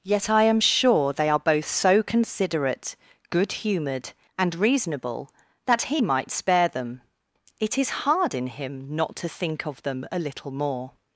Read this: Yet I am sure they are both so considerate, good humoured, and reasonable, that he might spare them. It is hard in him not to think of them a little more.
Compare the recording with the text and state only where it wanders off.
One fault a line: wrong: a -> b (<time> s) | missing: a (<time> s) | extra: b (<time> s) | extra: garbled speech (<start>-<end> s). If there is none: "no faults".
no faults